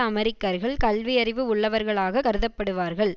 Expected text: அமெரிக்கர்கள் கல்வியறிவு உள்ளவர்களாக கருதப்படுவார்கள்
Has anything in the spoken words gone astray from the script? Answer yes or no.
no